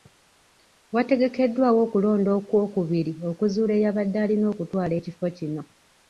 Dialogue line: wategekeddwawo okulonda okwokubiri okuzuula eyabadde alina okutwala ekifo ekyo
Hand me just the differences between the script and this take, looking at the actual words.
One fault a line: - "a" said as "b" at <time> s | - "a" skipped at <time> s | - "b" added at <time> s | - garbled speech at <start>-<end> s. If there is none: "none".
- "ekyo" said as "kino" at 5.4 s